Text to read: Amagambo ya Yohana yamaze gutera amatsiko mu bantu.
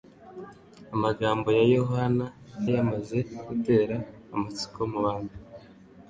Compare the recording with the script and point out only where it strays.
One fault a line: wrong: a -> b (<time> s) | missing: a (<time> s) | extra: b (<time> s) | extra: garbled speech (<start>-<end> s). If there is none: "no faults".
no faults